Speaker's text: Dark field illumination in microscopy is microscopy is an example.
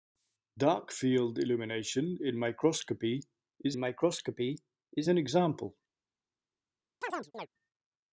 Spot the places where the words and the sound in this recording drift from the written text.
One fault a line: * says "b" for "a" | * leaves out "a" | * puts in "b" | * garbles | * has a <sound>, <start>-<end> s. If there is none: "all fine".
* has a chirp, 7.0-7.5 s